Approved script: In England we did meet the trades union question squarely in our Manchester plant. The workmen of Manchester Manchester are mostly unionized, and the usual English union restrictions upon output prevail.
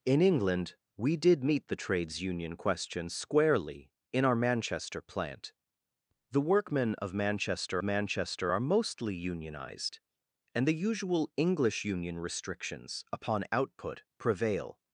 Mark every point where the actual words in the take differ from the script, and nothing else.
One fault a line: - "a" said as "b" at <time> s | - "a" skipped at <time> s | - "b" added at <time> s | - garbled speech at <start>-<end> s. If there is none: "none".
none